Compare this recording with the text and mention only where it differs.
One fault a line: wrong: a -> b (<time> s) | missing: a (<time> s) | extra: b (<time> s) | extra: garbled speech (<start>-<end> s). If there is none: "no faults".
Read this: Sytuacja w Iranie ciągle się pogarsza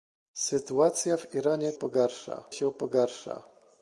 wrong: ciągle -> pogarsza (1.7 s)